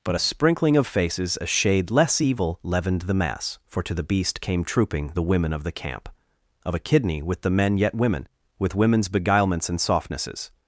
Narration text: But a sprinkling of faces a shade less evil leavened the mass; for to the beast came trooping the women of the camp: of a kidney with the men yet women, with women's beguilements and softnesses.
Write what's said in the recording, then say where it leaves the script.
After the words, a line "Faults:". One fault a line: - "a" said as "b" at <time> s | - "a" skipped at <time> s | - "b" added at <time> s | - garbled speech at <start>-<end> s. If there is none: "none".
But a sprinkling of faces a shade less evil leavened the mass; for to the beast came trooping the women of the camp: of a kidney with the men yet women, with women's beguilements and softnesses.
Faults:
none